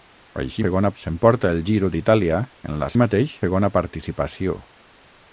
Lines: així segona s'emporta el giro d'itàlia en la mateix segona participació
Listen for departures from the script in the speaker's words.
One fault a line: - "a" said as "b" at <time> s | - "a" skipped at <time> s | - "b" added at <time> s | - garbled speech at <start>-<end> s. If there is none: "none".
none